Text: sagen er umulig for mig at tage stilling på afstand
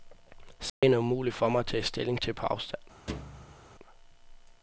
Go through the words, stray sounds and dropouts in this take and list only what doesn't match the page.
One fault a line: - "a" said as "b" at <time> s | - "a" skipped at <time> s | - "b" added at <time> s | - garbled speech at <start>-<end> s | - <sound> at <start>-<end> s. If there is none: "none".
- dropout at 0.7-0.8 s
- "til" added at 2.2 s
- thud at 3.1-3.6 s